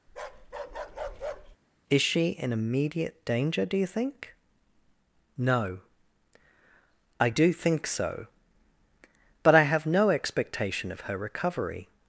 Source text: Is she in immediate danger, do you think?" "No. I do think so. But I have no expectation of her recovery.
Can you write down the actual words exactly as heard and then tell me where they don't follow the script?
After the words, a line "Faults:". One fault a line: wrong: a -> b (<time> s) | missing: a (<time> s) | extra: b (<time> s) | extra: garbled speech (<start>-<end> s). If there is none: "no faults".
Is she in immediate danger, do you think?" "No. I do think so. But I have no expectation of her recovery.
Faults:
no faults